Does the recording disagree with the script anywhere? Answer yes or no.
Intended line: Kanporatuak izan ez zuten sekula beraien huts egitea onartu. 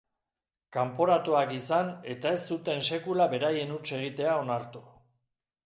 yes